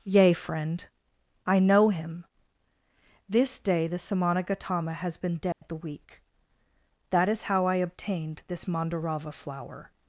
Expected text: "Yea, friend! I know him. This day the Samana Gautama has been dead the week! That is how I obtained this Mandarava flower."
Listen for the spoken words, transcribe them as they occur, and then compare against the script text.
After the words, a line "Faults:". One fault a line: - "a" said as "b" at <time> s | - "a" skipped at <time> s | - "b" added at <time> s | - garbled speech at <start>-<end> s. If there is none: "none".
"Yea, friend! I know him. This day the Samana Gautama has been dead the week! That is how I obtained this Mandarava flower."
Faults:
none